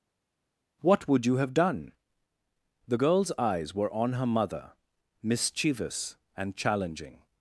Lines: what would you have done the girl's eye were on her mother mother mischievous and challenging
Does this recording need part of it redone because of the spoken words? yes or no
yes